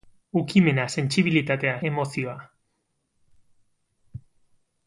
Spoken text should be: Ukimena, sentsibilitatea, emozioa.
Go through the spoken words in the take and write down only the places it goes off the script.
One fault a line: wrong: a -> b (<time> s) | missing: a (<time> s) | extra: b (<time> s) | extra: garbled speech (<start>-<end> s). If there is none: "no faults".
no faults